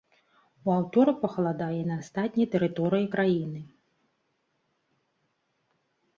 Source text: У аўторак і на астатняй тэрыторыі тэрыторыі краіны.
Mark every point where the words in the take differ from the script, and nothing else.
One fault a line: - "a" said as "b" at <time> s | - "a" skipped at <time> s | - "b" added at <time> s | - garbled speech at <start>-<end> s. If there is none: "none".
- "пахаладае" added at 1.2 s
- "тэрыторыі" skipped at 3.1 s